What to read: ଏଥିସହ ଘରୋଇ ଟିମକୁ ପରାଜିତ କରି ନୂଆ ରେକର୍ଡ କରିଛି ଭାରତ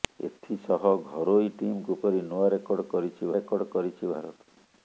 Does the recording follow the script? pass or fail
fail